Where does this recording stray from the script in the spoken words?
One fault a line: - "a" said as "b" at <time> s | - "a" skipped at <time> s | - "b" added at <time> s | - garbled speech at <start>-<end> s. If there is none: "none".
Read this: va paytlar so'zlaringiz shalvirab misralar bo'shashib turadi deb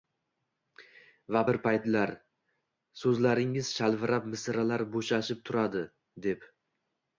- "bir" added at 1.5 s